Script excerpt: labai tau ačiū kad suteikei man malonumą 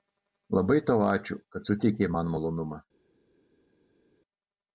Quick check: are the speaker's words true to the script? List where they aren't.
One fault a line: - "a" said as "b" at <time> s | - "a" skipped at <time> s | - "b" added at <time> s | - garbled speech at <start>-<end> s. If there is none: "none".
none